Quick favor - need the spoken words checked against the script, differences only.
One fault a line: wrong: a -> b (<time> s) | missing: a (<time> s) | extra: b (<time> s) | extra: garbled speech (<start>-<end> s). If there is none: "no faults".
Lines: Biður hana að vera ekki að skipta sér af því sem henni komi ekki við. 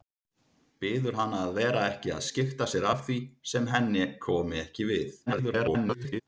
extra: garbled speech (5.3-6.2 s)